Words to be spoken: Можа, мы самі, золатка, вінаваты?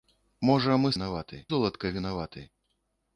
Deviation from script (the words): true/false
true